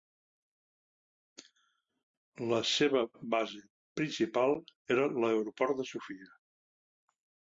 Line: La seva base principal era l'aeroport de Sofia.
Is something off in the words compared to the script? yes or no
no